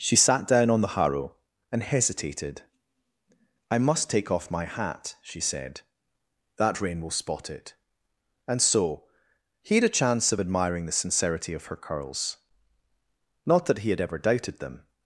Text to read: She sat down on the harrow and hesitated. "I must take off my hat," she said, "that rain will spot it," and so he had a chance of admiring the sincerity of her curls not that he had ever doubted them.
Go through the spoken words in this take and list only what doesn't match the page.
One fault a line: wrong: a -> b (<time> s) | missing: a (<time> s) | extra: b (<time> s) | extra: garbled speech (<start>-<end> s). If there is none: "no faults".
no faults